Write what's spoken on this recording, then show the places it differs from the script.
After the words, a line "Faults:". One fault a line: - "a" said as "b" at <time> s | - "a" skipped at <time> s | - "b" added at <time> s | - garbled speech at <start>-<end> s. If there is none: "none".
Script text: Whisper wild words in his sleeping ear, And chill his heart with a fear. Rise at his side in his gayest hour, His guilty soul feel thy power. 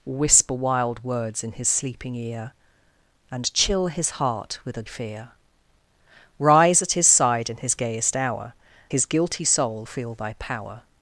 Whisper wild words in his sleeping ear, And chill his heart with a fear. Rise at his side in his gayest hour, His guilty soul feel thy power.
Faults:
none